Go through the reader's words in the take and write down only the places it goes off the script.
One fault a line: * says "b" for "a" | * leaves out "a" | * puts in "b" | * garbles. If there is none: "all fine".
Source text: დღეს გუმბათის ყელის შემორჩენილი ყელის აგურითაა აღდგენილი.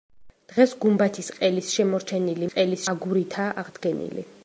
all fine